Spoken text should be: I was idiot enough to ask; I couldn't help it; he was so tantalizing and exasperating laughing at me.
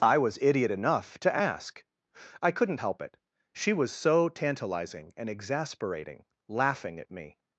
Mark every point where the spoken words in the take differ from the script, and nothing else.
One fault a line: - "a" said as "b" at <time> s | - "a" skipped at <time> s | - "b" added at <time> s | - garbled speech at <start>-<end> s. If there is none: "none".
- "he" said as "she" at 3.5 s